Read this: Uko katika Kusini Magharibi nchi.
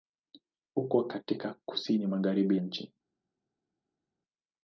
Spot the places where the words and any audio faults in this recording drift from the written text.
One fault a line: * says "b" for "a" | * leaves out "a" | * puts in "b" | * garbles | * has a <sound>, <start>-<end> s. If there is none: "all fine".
all fine